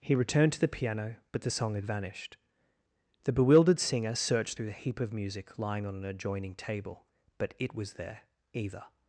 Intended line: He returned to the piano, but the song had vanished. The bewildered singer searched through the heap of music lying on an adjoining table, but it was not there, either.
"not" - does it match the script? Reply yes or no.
no